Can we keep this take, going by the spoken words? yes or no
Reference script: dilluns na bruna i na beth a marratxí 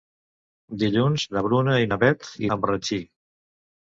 yes